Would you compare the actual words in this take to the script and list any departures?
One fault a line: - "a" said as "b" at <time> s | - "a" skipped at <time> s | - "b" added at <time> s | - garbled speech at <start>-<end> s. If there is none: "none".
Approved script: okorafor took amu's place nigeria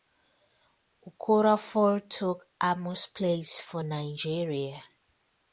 - "for" added at 3.7 s